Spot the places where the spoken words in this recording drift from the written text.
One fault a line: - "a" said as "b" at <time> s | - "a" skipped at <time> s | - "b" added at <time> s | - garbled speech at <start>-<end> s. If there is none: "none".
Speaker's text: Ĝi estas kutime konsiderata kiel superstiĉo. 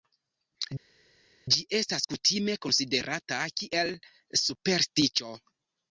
none